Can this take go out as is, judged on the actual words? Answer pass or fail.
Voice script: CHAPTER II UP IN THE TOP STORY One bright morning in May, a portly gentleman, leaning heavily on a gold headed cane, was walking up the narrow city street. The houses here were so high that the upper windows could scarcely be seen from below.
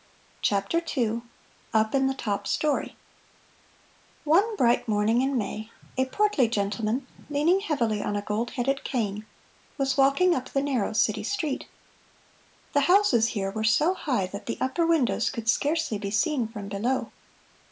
pass